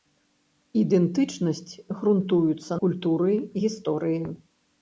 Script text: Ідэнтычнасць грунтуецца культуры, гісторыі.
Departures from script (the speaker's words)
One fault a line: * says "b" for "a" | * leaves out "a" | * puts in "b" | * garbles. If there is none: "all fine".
all fine